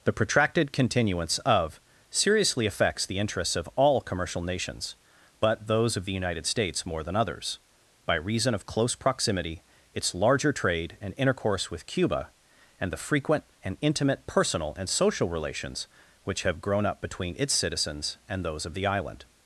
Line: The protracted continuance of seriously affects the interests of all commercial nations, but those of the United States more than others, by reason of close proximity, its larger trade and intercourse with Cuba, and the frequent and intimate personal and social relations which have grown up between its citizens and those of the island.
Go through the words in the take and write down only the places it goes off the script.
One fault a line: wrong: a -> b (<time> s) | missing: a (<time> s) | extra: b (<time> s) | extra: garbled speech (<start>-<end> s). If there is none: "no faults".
no faults